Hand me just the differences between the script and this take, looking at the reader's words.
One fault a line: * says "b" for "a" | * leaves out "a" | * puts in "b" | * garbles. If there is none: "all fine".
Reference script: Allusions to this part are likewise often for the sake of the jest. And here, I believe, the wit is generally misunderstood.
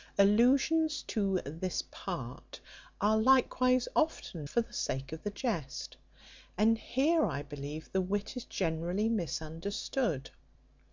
all fine